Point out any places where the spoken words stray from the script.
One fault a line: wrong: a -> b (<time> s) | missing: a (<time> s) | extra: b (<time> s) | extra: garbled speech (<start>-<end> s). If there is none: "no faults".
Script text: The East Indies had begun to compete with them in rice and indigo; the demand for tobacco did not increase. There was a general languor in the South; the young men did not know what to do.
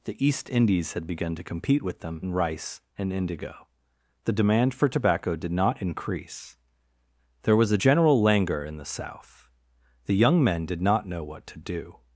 no faults